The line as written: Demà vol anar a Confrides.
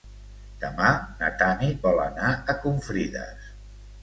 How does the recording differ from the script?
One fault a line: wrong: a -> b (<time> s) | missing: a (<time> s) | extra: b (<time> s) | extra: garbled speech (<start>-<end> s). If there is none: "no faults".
extra: na Tanit (1.2 s)